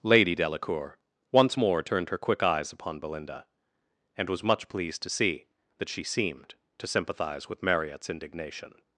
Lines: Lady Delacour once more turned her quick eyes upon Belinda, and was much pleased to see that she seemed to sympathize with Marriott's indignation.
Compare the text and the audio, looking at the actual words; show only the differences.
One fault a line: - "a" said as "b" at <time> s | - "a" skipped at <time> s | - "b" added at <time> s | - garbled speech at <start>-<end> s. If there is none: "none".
none